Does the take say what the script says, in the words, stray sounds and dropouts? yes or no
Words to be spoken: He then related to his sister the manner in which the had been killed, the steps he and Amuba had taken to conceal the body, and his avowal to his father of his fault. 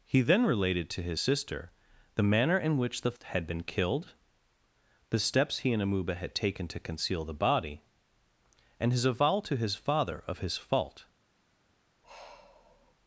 no